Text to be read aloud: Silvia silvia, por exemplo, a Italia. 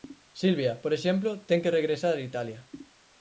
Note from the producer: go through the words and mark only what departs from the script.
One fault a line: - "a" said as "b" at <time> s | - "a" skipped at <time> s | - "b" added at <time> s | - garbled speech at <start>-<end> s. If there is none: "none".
- "silvia" skipped at 0.7 s
- "ten que regresar" added at 1.5 s